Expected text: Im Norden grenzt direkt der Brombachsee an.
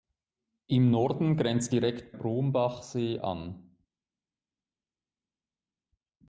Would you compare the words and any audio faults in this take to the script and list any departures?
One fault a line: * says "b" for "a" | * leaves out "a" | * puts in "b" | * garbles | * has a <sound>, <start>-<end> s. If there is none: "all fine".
* leaves out "der"